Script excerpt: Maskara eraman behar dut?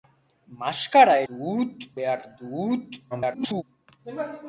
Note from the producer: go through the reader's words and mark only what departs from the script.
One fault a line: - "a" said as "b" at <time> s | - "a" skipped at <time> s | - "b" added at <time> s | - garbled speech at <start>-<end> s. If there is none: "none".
- "eraman" said as "dut" at 1.3 s
- garbled speech at 3.1-3.6 s